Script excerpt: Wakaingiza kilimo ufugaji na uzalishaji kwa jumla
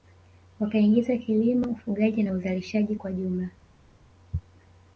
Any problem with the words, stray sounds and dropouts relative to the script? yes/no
no